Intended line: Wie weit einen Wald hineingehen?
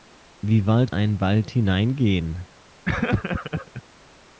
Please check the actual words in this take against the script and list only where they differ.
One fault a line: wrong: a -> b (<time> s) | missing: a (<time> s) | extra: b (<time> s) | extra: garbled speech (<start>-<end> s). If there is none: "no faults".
no faults